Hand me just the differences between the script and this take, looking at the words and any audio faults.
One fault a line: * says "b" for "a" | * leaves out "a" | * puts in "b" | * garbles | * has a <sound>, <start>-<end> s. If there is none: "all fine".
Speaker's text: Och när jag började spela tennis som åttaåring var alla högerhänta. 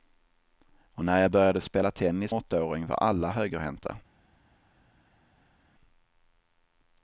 * leaves out "som"